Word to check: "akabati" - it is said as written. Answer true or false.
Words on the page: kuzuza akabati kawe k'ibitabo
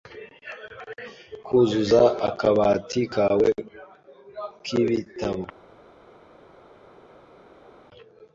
true